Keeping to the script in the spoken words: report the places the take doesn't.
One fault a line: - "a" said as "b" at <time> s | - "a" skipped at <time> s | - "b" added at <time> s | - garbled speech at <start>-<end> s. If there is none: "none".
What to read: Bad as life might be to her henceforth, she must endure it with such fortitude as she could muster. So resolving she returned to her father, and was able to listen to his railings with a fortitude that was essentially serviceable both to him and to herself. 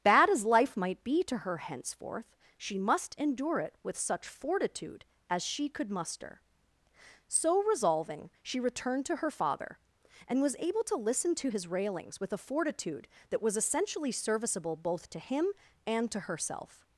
none